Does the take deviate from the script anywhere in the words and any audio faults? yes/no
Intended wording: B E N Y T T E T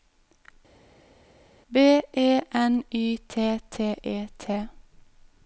no